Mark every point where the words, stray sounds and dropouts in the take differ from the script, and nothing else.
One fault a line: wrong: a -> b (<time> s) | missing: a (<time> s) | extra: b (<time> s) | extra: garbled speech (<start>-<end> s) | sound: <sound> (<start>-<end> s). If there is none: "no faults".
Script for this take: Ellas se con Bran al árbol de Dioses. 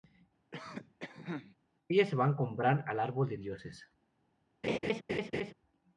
sound: cough (0.5-1.6 s)
extra: van (2.2 s)
sound: laugh (4.6-5.5 s)